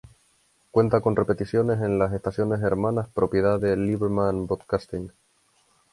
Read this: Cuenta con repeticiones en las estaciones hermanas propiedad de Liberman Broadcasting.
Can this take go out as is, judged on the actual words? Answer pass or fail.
pass